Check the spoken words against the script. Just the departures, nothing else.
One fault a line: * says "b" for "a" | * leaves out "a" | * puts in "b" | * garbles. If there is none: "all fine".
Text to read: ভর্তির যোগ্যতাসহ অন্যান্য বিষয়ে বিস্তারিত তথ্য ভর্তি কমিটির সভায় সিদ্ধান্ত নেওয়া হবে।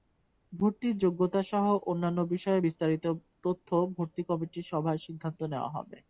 all fine